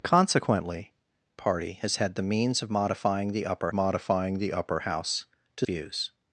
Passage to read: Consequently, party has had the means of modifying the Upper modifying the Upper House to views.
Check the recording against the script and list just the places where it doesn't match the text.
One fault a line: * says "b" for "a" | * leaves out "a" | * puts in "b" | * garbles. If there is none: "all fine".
all fine